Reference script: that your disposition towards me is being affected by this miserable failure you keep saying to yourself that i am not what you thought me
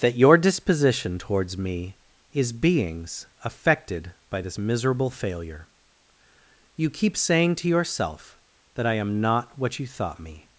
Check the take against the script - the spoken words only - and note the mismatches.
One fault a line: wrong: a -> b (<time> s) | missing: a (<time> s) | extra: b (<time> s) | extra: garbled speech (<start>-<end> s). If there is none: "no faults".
wrong: being -> beings (2.5 s)